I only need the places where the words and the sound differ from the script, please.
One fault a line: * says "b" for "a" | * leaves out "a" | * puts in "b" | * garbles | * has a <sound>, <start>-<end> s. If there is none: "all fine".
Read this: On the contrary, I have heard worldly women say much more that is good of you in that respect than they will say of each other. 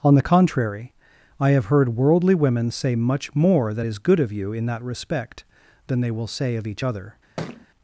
* has a thud, 7.4-7.7 s